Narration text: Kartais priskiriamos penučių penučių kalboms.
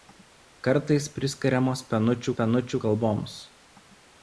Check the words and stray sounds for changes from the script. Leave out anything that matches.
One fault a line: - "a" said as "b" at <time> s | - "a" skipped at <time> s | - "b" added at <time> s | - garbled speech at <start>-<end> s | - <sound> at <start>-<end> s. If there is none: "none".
none